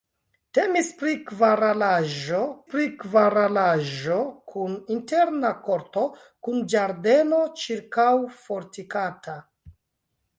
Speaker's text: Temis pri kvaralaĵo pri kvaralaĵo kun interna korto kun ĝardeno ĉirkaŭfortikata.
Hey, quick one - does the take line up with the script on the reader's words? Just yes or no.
yes